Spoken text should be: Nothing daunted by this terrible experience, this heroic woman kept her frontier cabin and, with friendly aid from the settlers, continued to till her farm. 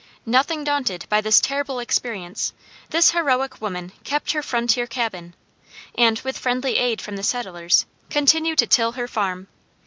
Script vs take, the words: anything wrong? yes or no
no